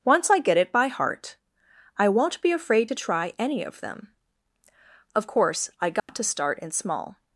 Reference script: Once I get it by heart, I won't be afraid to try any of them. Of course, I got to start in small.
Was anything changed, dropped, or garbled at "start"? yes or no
no